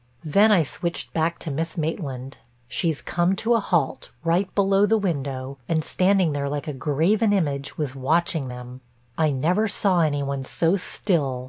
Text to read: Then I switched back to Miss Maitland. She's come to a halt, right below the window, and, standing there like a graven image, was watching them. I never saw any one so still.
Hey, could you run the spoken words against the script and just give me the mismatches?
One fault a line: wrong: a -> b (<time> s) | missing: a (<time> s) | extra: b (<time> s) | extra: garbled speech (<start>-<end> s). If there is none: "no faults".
no faults